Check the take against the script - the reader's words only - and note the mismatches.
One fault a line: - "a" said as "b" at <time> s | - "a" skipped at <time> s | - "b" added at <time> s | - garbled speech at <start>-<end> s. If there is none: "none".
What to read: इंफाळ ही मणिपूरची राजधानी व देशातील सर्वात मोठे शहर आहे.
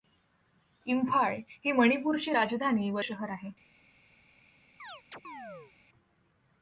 - "देशातील सर्वात मोठे" skipped at 3.0 s